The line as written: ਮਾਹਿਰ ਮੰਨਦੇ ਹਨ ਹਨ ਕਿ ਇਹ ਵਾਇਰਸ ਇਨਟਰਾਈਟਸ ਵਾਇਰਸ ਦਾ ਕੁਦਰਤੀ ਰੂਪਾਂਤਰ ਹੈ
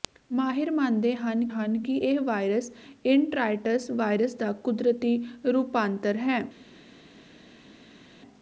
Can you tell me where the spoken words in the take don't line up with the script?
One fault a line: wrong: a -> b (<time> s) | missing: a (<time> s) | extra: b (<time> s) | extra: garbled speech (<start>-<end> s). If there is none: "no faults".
no faults